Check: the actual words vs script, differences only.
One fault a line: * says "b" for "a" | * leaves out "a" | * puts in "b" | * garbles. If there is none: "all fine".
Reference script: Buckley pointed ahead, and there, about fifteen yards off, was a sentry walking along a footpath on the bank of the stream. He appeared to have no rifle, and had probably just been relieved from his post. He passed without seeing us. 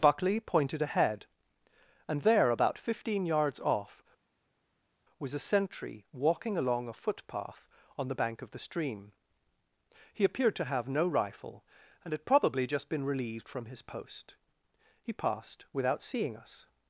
all fine